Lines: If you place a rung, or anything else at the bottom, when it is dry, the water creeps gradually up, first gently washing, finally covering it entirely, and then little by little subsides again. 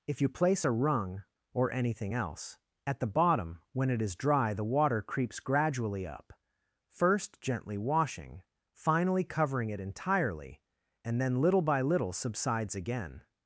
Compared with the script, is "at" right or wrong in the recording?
right